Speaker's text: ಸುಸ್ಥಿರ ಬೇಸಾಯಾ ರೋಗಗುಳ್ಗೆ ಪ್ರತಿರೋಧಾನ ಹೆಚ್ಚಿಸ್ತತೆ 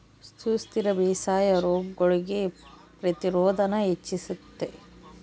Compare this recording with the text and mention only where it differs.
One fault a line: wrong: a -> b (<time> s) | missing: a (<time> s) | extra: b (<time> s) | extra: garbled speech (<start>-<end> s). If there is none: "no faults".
no faults